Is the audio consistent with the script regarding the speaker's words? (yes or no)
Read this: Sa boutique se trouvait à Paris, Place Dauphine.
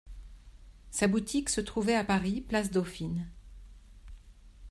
yes